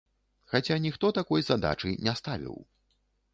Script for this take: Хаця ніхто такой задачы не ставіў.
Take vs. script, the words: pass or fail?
pass